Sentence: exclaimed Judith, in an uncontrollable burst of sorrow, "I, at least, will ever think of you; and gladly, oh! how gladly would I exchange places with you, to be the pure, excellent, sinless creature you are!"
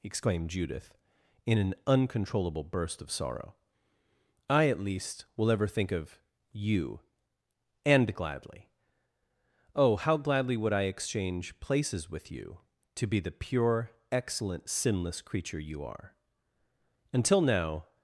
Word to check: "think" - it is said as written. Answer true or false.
true